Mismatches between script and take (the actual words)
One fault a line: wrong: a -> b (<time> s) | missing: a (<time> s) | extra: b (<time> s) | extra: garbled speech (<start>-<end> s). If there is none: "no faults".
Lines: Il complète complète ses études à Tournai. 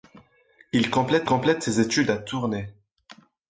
no faults